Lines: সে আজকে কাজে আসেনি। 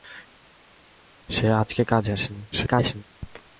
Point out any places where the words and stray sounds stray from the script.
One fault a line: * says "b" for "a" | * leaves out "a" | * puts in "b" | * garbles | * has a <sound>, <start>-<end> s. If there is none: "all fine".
* garbles